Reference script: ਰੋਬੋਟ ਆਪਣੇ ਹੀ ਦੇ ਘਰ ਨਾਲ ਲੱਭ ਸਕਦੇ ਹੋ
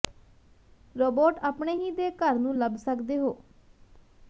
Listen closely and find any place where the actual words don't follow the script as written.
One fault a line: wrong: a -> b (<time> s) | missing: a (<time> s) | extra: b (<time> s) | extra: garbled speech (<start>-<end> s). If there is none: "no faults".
wrong: ਨਾਲ -> ਨੂੰ (2.4 s)